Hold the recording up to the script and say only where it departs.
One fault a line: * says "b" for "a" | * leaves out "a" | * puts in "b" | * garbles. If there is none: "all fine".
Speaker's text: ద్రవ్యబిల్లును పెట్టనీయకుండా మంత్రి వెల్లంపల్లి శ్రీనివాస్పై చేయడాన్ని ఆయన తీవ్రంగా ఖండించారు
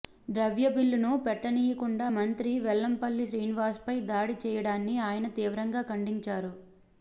* puts in "దాడి"